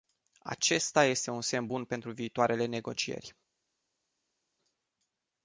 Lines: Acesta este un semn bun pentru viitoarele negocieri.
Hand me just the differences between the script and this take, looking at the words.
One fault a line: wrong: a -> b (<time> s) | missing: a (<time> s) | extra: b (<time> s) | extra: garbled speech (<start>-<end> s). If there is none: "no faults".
no faults